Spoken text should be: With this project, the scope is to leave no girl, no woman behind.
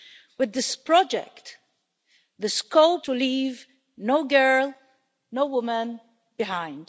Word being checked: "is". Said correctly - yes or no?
no